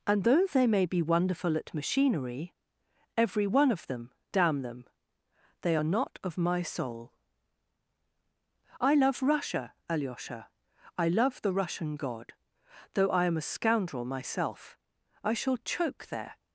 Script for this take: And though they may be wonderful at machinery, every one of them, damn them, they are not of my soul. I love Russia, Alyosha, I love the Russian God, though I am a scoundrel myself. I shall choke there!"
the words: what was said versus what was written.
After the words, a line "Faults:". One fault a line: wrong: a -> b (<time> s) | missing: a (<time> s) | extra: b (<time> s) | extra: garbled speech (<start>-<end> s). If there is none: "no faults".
And though they may be wonderful at machinery, every one of them, damn them, they are not of my soul. I love Russia, Alyosha, I love the Russian God, though I am a scoundrel myself. I shall choke there!"
Faults:
no faults